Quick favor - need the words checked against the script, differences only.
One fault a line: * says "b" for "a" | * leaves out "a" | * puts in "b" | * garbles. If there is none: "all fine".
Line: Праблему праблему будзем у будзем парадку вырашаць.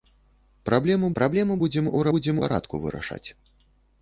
all fine